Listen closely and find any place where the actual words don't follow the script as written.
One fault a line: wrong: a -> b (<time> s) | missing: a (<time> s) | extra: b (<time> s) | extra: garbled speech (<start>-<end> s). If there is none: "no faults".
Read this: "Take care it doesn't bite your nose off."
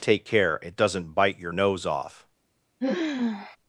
no faults